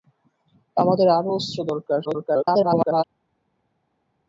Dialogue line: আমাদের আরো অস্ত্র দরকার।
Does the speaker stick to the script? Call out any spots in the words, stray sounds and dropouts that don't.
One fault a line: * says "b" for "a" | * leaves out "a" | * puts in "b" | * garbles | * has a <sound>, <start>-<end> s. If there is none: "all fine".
* garbles